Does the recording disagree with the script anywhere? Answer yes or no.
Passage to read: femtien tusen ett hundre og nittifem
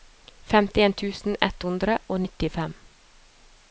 no